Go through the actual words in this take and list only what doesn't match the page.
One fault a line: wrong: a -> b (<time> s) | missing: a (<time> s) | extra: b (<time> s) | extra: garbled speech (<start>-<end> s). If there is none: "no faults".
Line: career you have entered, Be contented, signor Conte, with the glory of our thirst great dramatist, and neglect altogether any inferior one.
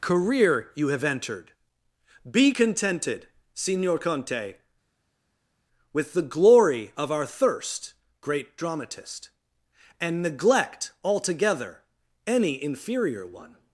no faults